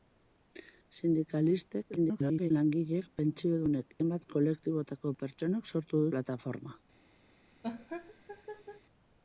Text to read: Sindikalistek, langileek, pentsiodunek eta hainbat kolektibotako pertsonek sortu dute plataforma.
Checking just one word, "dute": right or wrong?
wrong